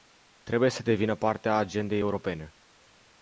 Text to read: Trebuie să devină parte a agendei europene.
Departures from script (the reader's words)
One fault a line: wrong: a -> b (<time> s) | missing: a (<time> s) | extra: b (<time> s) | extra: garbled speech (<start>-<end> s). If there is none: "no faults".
no faults